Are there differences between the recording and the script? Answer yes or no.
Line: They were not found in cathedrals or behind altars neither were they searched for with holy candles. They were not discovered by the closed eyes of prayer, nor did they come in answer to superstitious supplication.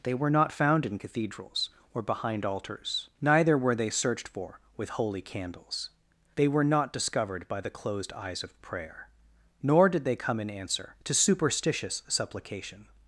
no